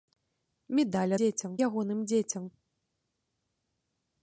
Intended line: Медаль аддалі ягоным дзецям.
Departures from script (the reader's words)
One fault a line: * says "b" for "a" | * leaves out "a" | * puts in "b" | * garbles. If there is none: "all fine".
* says "дзецям" for "аддалі"